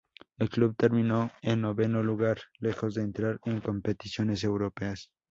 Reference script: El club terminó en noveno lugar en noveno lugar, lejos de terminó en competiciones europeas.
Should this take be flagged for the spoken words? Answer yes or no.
yes